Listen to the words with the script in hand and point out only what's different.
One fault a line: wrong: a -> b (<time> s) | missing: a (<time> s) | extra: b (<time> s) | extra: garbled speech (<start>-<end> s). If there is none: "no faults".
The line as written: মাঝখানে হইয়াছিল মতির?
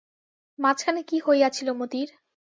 extra: কী (1.0 s)